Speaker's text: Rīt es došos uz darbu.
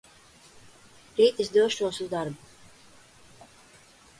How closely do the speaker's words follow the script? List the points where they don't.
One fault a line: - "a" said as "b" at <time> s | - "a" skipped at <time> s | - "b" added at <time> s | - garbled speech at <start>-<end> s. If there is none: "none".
none